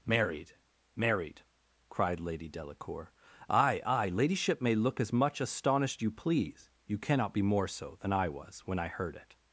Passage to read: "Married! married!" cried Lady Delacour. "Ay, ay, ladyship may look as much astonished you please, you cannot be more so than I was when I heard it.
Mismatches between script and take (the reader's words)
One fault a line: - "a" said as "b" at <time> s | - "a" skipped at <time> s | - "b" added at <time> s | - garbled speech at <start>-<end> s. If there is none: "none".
none